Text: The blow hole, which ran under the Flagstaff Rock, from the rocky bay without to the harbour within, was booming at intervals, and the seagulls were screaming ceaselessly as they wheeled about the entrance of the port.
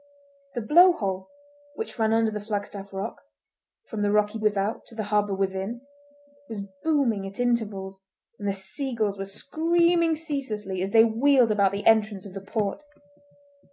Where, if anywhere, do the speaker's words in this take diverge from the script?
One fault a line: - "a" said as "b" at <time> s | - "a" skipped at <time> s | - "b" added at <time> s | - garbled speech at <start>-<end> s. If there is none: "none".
- "bay" skipped at 4.4 s